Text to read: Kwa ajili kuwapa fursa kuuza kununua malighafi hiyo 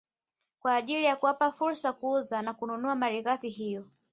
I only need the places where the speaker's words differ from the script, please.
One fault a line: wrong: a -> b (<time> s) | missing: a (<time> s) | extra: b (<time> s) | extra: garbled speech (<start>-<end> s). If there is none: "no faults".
extra: ya (1.0 s)
extra: na (2.4 s)